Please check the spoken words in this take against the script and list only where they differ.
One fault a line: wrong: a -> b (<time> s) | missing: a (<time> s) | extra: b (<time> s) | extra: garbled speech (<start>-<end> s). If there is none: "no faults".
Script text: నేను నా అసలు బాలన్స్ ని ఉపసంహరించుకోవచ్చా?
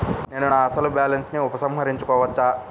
no faults